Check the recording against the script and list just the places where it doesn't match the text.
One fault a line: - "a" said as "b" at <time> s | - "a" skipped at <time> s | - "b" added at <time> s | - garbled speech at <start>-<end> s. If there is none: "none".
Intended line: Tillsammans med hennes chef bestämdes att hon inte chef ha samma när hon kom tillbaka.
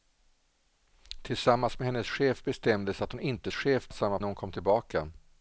none